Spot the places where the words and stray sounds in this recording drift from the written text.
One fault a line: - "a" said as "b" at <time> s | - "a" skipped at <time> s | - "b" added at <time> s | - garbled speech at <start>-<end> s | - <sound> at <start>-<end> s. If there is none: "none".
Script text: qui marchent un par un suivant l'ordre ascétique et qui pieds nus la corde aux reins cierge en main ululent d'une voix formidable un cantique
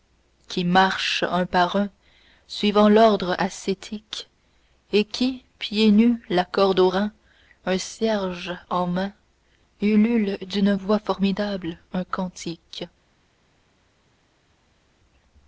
- "un" added at 7.6 s